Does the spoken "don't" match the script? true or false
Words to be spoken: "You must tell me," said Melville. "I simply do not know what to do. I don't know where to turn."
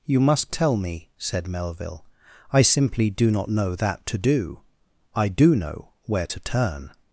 false